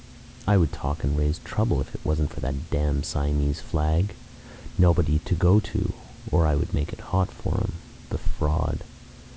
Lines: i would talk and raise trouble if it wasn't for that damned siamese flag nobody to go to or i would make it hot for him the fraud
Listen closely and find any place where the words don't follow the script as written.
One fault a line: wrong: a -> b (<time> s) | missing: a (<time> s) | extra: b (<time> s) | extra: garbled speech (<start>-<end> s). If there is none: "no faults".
no faults